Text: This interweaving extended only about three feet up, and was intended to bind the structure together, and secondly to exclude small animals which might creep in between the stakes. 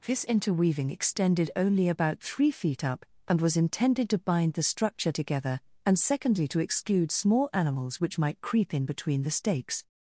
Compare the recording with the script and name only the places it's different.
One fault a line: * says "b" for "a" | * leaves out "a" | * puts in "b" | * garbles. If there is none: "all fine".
all fine